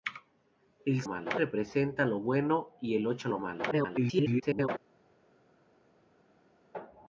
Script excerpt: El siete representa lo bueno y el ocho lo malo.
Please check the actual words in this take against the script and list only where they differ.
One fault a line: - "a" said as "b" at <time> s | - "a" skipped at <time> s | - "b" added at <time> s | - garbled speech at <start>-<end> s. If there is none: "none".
- "siete" said as "malo" at 1.0 s
- garbled speech at 3.7-4.7 s